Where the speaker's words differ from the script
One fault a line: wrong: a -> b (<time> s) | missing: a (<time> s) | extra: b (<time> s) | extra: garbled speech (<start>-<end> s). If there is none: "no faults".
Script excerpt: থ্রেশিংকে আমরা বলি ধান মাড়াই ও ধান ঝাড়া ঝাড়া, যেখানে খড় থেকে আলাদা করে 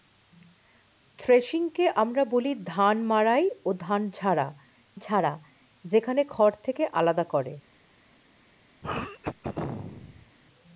no faults